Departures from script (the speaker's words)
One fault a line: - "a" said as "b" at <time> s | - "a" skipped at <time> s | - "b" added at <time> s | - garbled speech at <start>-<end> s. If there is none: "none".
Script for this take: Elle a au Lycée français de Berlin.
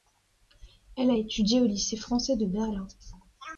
- "étudié" added at 1.2 s